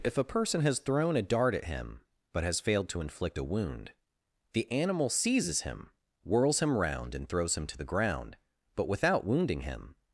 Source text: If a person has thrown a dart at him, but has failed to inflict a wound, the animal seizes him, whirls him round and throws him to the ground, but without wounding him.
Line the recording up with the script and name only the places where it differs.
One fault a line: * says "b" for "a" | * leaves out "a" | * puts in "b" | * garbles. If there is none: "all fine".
all fine